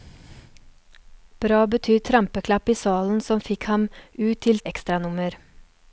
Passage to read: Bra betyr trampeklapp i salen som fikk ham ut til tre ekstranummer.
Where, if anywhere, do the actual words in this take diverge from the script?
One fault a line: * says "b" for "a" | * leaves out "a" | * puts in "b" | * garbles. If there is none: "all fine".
* leaves out "tre"